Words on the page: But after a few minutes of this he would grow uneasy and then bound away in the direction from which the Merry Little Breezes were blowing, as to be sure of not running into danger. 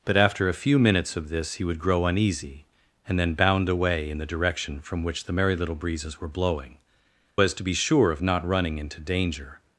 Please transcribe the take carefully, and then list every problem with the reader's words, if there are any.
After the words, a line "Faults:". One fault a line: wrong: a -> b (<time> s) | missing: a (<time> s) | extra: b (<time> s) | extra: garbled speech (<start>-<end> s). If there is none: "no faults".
But after a few minutes of this he would grow uneasy and then bound away in the direction from which the Merry Little Breezes were blowing, as to be sure of not running into danger.
Faults:
no faults